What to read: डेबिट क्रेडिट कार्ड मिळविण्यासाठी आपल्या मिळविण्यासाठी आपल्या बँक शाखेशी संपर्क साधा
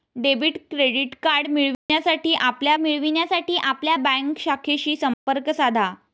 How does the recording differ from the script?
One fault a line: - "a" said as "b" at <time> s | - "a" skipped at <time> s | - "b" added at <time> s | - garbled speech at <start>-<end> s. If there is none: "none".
none